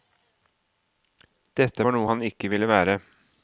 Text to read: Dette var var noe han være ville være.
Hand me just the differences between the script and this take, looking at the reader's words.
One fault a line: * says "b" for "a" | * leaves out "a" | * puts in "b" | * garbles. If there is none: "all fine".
* leaves out "var"
* says "ikke" for "være"